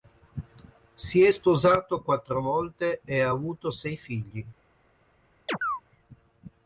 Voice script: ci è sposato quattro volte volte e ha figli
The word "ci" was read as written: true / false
false